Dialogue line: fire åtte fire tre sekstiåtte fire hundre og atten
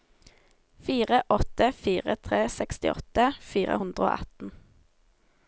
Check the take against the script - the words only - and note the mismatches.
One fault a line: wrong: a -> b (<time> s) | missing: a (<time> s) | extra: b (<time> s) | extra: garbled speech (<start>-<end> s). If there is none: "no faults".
no faults